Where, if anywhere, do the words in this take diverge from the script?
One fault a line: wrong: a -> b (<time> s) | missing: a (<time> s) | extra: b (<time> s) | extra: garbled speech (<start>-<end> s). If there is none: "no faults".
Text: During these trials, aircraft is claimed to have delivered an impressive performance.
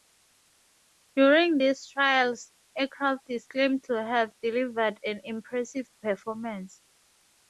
no faults